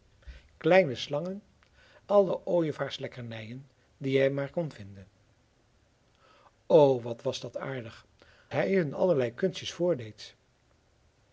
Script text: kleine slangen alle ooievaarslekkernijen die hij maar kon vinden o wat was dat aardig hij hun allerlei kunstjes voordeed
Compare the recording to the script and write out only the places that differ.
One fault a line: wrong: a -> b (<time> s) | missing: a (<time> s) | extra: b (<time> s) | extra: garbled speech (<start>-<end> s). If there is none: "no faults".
no faults